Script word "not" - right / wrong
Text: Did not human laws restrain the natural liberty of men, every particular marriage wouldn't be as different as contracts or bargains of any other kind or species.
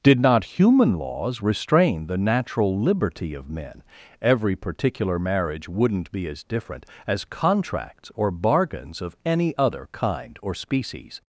right